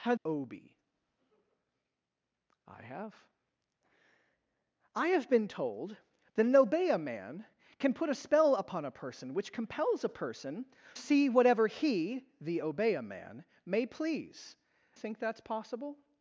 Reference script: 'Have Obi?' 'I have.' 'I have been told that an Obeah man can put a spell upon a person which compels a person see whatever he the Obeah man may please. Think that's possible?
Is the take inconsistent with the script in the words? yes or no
no